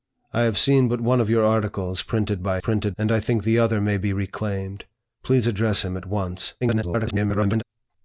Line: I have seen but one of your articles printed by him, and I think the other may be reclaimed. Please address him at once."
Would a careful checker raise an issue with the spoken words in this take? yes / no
yes